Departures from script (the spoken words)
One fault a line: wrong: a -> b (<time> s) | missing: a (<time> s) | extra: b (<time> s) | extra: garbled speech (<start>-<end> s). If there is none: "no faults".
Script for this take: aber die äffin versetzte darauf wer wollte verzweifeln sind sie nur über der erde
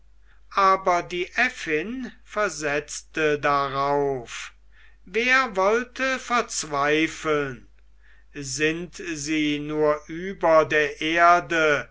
no faults